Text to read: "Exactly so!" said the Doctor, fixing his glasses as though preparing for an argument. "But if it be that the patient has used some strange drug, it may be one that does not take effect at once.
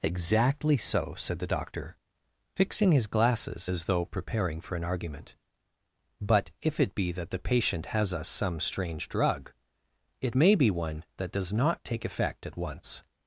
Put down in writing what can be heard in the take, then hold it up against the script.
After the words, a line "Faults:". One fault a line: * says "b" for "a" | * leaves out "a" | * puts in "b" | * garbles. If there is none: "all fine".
"Exactly so!" said the Doctor, fixing his glasses as though preparing for an argument. "But if it be that the patient has us some strange drug, it may be one that does not take effect at once.
Faults:
* says "us" for "used"